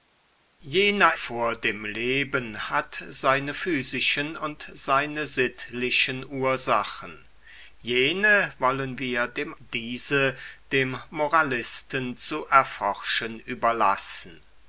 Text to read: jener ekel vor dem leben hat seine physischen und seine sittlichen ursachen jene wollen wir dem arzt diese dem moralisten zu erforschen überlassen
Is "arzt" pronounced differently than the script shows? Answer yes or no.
yes